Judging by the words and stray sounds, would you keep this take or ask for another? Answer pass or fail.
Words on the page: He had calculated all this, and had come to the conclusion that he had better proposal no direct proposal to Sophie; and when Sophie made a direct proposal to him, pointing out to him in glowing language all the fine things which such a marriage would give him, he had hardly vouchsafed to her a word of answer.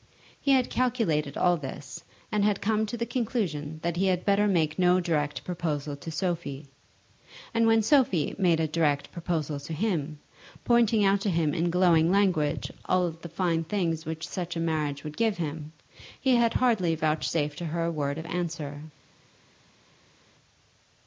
fail